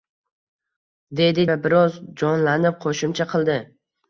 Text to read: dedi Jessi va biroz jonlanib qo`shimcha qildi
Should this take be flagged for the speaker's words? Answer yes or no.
yes